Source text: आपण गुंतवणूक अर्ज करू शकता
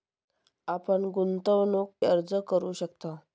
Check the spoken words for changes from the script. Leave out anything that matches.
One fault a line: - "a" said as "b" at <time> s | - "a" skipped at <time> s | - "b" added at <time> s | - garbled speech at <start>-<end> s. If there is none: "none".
none